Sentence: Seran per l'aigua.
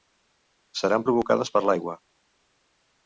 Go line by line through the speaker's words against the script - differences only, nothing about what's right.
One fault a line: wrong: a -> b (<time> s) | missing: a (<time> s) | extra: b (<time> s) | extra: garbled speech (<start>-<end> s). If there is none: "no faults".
extra: provocades (1.1 s)